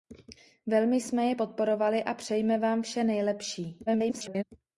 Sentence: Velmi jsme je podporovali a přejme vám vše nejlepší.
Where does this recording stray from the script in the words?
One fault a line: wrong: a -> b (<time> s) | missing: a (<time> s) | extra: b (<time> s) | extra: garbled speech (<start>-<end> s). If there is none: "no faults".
extra: garbled speech (3.9-4.4 s)